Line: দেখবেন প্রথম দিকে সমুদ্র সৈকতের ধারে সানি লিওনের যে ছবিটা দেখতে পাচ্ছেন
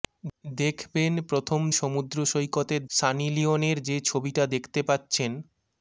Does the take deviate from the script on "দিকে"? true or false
true